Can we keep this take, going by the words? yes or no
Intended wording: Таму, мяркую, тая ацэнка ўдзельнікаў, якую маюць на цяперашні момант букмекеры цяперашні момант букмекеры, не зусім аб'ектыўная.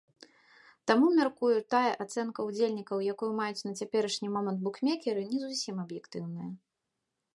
no